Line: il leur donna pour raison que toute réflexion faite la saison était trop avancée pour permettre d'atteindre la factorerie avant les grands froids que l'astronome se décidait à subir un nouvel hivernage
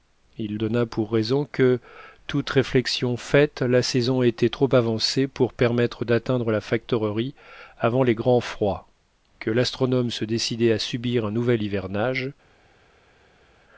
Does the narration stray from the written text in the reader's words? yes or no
yes